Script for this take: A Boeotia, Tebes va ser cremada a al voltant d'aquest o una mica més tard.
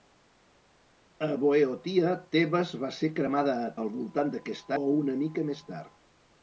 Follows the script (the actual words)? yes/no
yes